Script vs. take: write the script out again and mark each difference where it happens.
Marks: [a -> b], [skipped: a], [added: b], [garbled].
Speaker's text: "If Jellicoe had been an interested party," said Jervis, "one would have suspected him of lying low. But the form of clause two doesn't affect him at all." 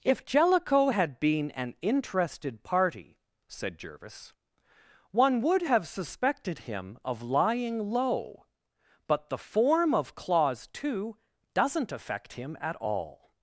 "If Jellicoe had been an interested party," said Jervis, "one would have suspected him of lying low. But the form of clause two doesn't affect him at all."